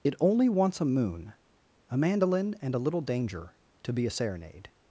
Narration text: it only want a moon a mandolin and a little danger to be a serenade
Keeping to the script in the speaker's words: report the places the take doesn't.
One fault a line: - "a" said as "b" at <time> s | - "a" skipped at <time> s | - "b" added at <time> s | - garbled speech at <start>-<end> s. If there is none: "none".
- "want" said as "wants" at 0.5 s